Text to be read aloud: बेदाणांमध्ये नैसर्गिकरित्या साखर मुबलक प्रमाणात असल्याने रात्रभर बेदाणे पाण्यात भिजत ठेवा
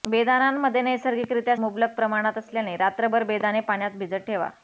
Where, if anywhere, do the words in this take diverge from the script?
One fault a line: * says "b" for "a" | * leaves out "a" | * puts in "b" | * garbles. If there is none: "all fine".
* leaves out "साखर"